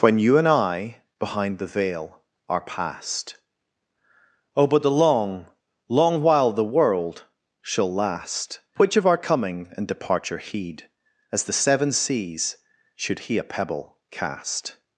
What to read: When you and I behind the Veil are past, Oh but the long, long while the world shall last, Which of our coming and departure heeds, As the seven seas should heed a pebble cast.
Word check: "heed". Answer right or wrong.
wrong